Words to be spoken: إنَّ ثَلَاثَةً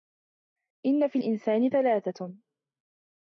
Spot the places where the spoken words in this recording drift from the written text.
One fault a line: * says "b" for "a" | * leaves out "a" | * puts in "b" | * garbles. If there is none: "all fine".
* puts in "فِي الْإِنْسَانِ"